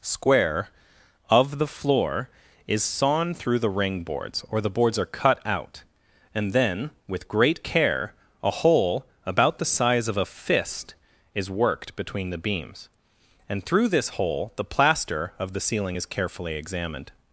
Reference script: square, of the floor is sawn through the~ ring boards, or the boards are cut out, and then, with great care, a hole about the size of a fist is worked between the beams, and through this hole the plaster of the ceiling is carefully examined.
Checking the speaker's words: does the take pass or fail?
pass